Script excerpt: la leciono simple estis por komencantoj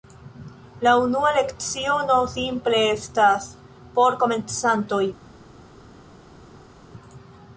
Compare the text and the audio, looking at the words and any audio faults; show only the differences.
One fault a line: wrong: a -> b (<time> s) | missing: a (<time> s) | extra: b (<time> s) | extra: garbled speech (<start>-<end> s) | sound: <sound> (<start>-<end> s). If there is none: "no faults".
extra: unua (1.0 s)
wrong: estis -> estas (3.0 s)